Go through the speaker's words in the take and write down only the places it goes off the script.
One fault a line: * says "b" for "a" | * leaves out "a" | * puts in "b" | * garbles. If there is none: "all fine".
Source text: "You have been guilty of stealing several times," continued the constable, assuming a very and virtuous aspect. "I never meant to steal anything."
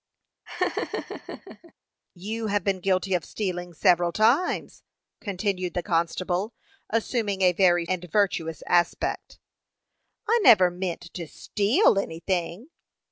all fine